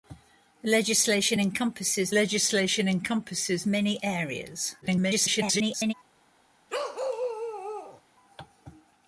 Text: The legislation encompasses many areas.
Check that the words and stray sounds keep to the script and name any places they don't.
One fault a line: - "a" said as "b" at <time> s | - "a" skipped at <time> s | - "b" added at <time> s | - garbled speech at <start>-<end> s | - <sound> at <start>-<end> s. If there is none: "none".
- "legislation encompasses" added at 2.1 s
- garbled speech at 4.8-5.9 s
- bark at 6.7-8.0 s